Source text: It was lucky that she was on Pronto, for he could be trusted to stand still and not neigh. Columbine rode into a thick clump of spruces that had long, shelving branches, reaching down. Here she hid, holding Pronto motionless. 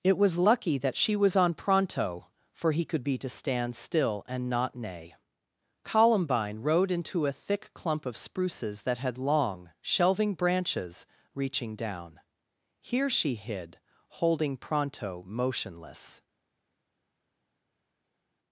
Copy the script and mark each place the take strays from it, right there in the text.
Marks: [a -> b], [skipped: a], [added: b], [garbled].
It was lucky that she was on Pronto, for he could be [skipped: trusted] to stand still and not neigh. Columbine rode into a thick clump of spruces that had long, shelving branches, reaching down. Here she hid, holding Pronto motionless.